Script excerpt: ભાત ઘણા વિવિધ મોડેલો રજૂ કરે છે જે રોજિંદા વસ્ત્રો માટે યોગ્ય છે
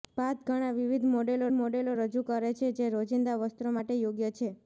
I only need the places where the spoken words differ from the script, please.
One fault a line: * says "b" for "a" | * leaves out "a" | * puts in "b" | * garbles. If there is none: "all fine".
* puts in "મોડેલો"